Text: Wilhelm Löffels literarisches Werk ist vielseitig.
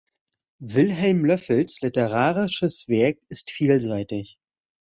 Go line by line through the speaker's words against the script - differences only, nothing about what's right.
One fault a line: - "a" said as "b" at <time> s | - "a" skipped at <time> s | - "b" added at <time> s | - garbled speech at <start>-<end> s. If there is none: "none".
none